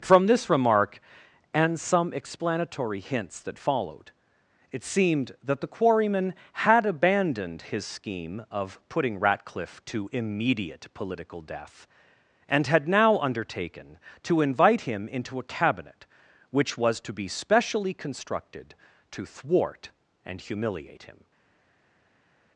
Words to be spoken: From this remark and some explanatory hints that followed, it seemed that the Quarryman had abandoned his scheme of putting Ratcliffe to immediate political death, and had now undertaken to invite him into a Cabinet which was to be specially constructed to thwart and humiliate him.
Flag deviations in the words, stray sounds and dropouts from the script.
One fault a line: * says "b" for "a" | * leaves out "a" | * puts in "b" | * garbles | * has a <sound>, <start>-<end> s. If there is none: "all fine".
all fine